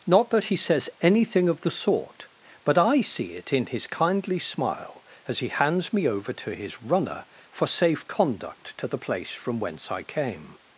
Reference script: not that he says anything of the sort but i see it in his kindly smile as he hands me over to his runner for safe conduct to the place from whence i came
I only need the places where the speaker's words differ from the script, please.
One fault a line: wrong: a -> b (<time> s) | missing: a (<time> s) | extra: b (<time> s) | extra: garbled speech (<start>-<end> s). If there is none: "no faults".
no faults